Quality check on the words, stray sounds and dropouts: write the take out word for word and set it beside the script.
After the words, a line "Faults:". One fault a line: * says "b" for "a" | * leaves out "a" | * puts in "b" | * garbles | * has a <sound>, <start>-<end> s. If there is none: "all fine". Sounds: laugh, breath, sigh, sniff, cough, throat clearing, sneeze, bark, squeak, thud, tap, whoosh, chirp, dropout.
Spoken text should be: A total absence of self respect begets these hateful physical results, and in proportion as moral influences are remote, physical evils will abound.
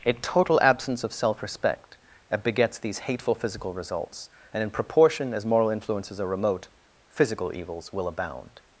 A total absence of self respect begets these hateful physical results, and in proportion as moral influences are remote, physical evils will abound.
Faults:
all fine